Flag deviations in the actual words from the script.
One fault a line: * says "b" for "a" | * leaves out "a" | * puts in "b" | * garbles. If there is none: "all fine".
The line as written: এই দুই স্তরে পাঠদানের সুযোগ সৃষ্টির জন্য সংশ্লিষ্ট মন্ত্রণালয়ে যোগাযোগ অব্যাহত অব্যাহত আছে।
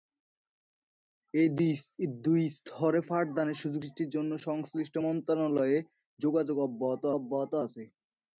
all fine